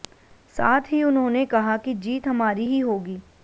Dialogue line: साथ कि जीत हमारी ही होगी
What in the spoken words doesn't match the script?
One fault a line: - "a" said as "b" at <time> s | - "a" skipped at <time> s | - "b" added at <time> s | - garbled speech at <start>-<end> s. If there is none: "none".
- "ही उन्होंने कहा" added at 0.9 s